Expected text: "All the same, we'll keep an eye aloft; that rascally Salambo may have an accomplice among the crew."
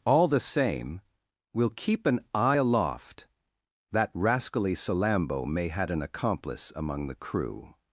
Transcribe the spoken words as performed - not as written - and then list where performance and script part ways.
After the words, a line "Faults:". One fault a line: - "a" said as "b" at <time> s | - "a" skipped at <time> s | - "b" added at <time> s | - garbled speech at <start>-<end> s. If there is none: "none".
"All the same, we'll keep an eye aloft; that rascally Salambo may had an accomplice among the crew."
Faults:
- "have" said as "had" at 5.7 s